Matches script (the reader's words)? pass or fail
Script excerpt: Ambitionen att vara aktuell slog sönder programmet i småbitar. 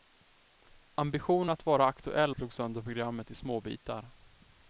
pass